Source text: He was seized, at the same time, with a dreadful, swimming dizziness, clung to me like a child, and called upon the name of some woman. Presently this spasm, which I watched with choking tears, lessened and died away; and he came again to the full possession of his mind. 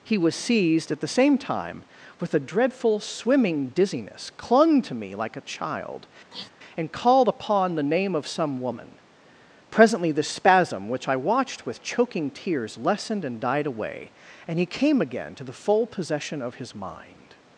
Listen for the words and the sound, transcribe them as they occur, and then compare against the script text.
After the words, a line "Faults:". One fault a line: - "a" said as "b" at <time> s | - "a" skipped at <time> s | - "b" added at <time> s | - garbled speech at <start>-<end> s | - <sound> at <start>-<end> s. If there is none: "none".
He was seized, at the same time, with a dreadful, swimming dizziness, clung to me like a child, and called upon the name of some woman. Presently the spasm, which I watched with choking tears, lessened and died away; and he came again to the full possession of his mind.
Faults:
- sniff at 6.3-6.5 s
- "this" said as "the" at 10.1 s